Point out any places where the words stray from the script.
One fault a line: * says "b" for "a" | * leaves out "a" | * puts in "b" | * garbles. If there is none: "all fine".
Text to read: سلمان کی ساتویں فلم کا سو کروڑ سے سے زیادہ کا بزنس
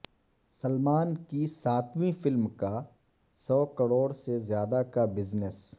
* leaves out "سے"